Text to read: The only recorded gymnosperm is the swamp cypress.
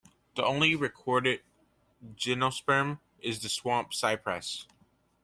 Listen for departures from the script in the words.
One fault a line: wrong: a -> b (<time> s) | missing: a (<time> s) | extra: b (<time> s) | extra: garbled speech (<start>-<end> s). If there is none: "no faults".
no faults